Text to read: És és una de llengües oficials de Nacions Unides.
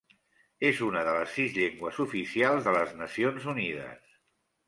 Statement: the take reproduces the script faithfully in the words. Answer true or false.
false